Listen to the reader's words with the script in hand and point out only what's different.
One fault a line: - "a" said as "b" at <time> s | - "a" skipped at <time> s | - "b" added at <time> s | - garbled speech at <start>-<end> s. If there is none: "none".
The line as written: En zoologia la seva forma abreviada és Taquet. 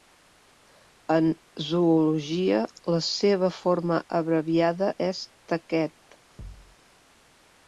none